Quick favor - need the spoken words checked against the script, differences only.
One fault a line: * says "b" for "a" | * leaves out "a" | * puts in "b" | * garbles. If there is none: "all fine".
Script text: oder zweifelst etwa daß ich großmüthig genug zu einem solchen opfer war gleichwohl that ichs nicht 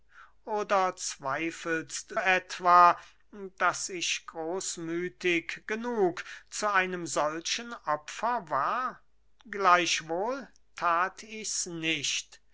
all fine